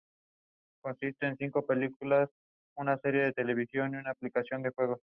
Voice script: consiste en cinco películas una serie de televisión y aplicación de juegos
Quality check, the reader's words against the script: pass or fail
fail